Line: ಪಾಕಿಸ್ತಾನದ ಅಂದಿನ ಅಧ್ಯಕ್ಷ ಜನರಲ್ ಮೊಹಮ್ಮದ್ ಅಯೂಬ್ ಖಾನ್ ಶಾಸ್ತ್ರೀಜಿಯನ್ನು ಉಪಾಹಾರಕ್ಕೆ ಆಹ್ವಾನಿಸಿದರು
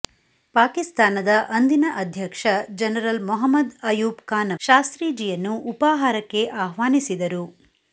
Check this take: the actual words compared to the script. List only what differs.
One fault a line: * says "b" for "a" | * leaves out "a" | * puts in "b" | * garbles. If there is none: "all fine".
all fine